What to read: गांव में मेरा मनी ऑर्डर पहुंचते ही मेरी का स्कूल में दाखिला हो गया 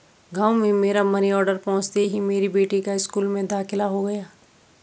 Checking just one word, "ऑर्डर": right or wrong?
right